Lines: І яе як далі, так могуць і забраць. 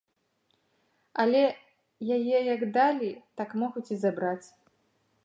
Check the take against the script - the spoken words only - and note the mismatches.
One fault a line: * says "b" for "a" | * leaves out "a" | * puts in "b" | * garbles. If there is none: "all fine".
* says "Але" for "І"